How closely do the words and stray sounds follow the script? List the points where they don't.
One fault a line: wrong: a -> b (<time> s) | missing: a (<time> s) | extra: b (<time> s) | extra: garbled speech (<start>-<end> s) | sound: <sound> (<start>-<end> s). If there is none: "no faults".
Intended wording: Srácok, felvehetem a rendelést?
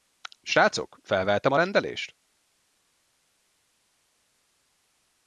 no faults